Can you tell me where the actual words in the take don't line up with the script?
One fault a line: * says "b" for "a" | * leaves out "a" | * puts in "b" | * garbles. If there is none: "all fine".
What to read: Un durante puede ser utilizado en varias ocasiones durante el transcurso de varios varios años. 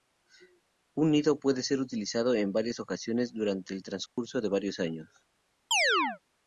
* says "nido" for "durante"
* leaves out "varios"